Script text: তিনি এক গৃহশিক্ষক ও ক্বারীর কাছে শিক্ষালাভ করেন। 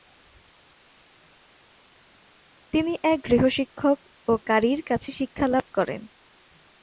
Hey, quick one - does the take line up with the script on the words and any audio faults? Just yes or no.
yes